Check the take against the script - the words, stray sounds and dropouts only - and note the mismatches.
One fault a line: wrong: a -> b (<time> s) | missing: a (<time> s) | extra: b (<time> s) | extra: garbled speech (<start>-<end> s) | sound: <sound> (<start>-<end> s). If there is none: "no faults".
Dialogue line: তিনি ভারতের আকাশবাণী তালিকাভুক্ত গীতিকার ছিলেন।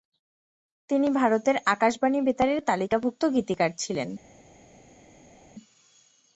extra: বেতারের (2.2 s)